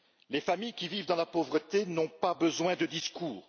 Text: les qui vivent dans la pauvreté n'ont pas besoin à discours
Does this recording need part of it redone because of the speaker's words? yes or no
yes